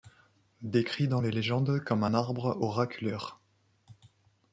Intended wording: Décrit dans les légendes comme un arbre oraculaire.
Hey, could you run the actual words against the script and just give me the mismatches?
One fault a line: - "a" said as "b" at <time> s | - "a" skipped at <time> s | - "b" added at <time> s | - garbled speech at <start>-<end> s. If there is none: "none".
none